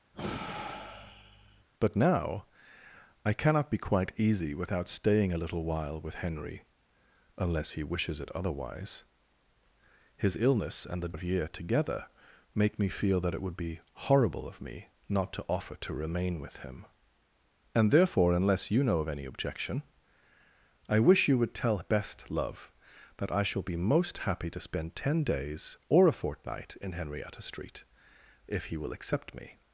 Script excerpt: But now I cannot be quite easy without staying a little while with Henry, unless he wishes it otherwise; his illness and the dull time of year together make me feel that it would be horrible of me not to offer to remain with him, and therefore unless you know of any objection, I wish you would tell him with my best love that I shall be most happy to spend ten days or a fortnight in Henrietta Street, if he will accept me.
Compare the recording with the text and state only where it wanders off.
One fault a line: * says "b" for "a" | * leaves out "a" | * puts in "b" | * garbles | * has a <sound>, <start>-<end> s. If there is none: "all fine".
* has a sigh, 0.1-1.6 s
* leaves out "dull time"
* leaves out "him with my"